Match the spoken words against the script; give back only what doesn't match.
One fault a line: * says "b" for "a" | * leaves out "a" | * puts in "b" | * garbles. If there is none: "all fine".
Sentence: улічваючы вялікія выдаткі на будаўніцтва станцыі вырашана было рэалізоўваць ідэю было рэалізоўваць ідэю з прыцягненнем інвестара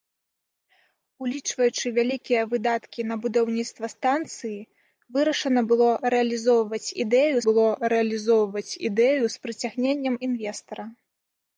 all fine